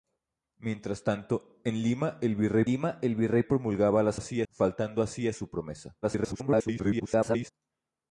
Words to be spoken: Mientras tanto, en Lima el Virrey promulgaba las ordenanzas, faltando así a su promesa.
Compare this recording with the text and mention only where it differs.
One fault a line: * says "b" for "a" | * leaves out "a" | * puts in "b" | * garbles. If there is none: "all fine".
* puts in "Lima el Virrey"
* says "así" for "ordenanzas"
* garbles